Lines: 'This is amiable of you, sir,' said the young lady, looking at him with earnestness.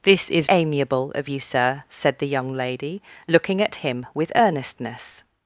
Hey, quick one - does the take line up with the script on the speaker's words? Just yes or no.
yes